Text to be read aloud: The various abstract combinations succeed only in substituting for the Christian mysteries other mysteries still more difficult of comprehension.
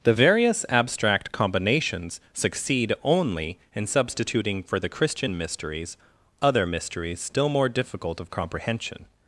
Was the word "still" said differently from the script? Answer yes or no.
no